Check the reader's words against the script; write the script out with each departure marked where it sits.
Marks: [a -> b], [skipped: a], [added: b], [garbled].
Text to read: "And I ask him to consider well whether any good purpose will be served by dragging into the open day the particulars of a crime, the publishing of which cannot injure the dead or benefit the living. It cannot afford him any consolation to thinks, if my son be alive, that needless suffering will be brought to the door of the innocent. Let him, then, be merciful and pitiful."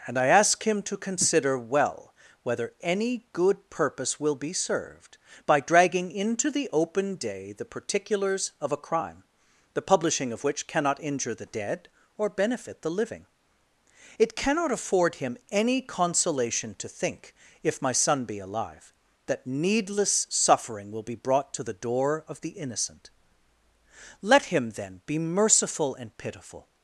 "And I ask him to consider well whether any good purpose will be served by dragging into the open day the particulars of a crime, the publishing of which cannot injure the dead or benefit the living. It cannot afford him any consolation to [thinks, -> think] if my son be alive, that needless suffering will be brought to the door of the innocent. Let him, then, be merciful and pitiful."